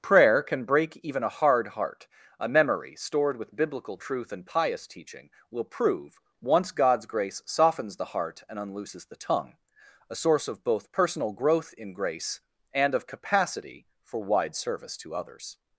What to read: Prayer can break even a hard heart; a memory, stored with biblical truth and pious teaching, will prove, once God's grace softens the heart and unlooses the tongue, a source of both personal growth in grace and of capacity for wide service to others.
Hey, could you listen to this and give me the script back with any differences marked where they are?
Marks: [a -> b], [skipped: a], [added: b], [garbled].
Prayer can break even a hard heart; a memory, stored with biblical truth and pious teaching, will prove, once God's grace softens the heart and unlooses the tongue, a source of both personal growth in grace and of capacity for wide service to others.